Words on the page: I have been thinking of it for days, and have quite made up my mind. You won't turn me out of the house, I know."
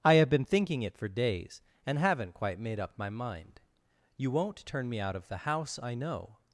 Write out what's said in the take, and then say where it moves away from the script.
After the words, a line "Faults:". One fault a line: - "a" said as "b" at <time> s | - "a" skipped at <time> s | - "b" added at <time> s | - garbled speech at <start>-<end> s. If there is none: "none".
I have been thinking it for days, and haven't quite made up my mind. You won't turn me out of the house, I know."
Faults:
- "of" skipped at 0.8 s
- "have" said as "haven't" at 2.0 s